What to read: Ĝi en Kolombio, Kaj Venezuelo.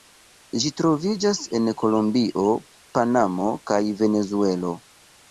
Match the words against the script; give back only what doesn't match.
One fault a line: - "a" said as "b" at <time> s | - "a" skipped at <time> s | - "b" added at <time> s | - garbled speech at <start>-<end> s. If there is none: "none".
- "troviĝas" added at 0.8 s
- "Panamo" added at 3.0 s